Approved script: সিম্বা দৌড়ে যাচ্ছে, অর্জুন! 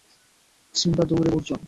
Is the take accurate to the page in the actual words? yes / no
no